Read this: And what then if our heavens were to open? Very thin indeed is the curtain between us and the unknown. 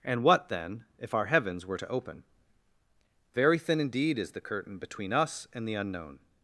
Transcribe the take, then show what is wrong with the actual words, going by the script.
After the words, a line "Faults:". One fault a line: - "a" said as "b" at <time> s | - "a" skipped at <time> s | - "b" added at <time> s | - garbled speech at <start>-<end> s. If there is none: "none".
And what then if our heavens were to open? Very thin indeed is the curtain between us and the unknown.
Faults:
none